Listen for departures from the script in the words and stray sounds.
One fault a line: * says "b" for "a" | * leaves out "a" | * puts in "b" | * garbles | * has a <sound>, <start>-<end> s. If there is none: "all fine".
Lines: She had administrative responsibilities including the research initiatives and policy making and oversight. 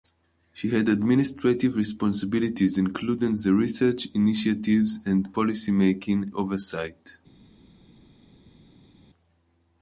* leaves out "and"